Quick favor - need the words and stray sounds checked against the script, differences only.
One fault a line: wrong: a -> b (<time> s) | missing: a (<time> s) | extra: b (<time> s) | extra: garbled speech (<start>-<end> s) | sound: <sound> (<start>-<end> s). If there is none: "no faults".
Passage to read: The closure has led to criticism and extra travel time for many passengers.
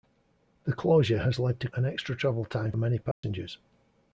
missing: criticism (1.7 s)
missing: for (2.7 s)
sound: dropout (3.1-3.2 s)